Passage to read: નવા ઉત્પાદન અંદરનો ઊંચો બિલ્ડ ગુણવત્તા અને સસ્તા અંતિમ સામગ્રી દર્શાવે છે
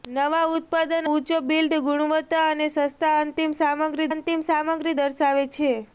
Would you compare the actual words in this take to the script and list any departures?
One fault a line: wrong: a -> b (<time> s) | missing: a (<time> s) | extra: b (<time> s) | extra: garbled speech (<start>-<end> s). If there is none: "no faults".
missing: અંદરનો (1.1 s)
extra: અંતિમ સામગ્રી (4.1 s)